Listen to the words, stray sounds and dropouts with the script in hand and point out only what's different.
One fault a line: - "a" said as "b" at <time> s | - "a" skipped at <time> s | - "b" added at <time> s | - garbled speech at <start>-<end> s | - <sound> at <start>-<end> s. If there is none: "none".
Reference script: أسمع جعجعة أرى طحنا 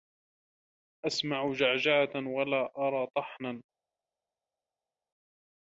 - "ولا" added at 2.3 s